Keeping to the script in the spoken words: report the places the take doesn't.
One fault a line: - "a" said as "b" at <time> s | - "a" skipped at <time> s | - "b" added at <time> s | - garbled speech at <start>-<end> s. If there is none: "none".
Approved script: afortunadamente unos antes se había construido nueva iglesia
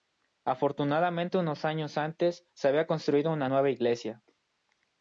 - "años" added at 1.6 s
- "una" added at 3.3 s